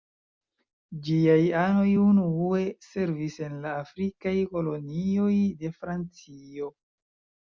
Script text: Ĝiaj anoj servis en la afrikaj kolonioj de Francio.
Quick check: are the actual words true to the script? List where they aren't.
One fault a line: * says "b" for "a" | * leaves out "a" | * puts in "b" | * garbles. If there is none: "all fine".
* puts in "unue"